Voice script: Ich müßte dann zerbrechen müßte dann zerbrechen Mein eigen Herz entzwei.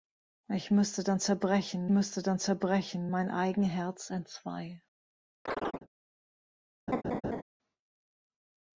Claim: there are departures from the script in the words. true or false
false